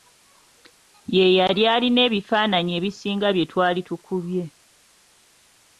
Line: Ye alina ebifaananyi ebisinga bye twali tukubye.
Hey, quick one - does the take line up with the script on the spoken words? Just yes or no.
no